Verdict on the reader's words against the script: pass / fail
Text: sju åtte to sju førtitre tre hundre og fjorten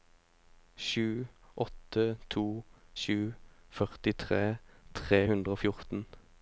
pass